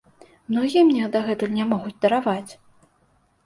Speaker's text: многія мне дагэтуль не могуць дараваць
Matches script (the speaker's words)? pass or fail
pass